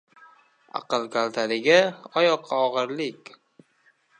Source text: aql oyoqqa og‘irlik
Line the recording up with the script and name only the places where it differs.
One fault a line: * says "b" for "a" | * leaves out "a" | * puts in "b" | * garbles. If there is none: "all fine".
* puts in "kaltaligi"